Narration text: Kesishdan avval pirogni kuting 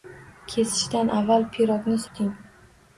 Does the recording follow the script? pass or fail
pass